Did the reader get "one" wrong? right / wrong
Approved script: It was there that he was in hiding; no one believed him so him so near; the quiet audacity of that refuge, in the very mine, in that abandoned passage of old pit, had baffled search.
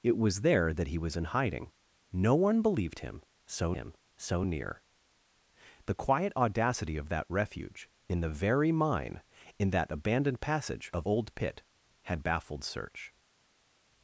right